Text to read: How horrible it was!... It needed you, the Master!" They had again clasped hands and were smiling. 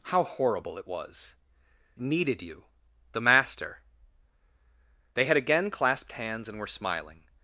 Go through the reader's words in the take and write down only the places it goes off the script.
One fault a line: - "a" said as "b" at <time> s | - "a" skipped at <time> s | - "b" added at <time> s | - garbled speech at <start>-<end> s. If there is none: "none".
- "It" skipped at 1.4 s